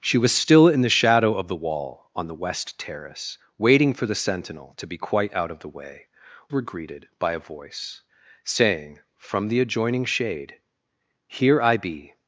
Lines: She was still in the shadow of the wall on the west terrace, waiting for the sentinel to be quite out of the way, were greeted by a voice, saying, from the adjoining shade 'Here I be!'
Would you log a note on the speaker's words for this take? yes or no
no